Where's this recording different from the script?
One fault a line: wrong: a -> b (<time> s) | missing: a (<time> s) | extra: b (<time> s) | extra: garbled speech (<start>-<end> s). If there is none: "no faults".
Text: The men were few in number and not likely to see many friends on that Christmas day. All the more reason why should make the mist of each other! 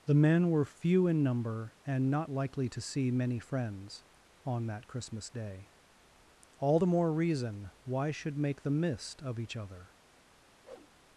no faults